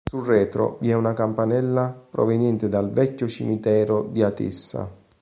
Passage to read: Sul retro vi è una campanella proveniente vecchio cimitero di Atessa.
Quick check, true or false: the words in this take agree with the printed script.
false